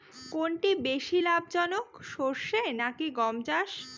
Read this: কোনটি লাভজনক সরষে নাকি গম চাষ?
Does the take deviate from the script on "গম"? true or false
false